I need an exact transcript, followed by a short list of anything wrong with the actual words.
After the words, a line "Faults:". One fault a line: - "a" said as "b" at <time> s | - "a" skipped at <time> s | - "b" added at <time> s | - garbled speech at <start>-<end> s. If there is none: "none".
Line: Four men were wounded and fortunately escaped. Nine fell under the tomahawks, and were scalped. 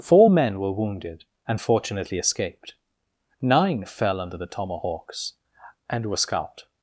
Four men were wounded and fortunately escaped. Nine fell under the tomahawks, and were scalped.
Faults:
none